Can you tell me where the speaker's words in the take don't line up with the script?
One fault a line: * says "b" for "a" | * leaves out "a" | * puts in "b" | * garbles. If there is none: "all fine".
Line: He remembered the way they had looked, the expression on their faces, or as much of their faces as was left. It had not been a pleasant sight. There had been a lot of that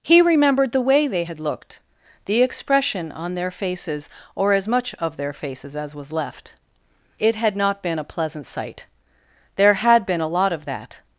all fine